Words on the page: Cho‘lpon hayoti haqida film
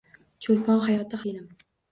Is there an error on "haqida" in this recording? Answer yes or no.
yes